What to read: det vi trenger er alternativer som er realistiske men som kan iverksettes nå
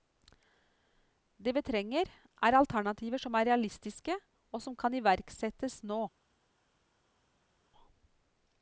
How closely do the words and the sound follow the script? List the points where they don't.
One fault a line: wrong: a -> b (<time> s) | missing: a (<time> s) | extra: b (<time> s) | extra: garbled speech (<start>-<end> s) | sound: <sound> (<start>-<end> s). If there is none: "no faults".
wrong: men -> og (4.5 s)